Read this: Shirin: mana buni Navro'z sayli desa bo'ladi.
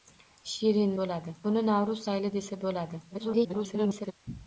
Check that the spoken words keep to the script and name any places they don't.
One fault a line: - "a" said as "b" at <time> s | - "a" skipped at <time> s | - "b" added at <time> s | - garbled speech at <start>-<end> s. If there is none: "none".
- "mana" said as "bo'ladi" at 1.0 s
- garbled speech at 3.1-4.1 s